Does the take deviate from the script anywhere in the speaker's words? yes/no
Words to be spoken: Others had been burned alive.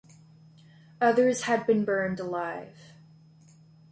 no